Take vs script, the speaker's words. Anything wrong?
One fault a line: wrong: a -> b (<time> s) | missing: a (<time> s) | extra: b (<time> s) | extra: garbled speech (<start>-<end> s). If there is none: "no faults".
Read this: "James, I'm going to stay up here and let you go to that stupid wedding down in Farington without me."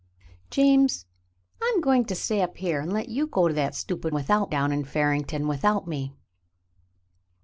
wrong: wedding -> without (4.1 s)